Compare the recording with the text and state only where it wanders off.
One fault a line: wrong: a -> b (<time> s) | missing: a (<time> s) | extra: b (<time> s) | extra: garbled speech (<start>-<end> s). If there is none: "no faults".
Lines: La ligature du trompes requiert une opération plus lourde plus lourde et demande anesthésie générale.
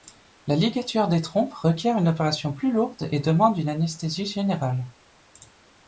wrong: du -> des (1.1 s)
missing: plus lourde (3.1 s)
extra: une (3.6 s)